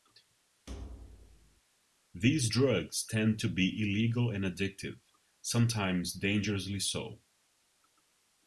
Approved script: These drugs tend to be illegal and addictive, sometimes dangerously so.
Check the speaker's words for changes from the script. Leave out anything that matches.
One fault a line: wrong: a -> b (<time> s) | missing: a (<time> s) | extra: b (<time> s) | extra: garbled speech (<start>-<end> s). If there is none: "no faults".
no faults